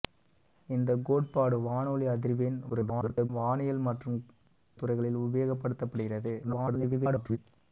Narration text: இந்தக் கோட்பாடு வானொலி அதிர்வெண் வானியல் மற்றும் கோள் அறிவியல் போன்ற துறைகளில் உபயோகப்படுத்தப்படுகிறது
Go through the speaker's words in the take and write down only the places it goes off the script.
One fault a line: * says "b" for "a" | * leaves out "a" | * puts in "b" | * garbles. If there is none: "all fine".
* garbles
* leaves out "கோள் அறிவியல் போன்ற"
* garbles